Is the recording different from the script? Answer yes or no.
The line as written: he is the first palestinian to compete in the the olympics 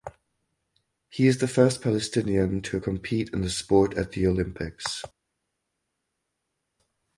yes